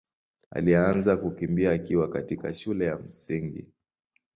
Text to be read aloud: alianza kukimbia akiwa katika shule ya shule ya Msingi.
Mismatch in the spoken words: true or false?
true